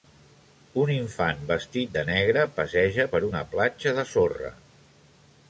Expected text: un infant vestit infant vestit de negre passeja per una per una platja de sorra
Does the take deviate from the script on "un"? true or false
false